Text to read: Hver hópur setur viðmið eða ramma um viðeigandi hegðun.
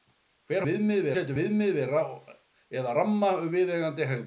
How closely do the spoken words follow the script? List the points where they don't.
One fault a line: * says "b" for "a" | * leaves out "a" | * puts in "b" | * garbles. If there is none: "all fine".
* says "viðmið" for "hópur"